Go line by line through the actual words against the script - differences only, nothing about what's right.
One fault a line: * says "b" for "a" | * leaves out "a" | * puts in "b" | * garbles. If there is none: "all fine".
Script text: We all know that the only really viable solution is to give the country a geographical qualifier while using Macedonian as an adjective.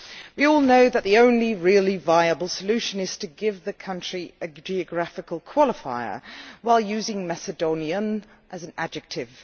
all fine